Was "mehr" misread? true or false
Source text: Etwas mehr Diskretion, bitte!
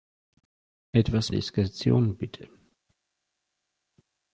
true